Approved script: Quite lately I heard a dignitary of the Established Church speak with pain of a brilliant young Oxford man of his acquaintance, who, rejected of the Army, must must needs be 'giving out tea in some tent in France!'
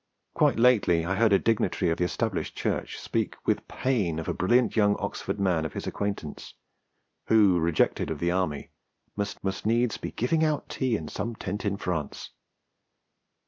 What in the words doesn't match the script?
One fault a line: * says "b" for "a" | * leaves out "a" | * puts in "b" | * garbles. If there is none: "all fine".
all fine